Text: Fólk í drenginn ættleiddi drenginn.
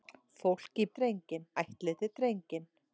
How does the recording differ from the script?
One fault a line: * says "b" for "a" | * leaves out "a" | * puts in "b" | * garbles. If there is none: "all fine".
all fine